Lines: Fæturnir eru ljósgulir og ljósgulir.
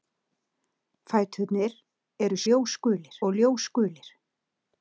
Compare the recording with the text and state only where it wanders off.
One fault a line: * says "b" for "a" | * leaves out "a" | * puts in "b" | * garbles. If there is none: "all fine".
all fine